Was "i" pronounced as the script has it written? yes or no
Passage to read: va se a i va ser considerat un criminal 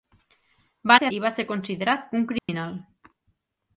yes